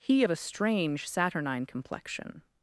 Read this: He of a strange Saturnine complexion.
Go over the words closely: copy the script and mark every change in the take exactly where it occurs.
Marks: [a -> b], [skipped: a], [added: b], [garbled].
He of a strange Saturnine complexion.